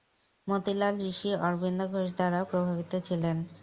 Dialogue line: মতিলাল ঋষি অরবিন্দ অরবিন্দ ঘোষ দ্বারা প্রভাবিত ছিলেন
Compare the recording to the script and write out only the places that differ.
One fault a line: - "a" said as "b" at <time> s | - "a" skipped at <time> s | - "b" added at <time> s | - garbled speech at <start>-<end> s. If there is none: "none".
- "অরবিন্দ" skipped at 1.8 s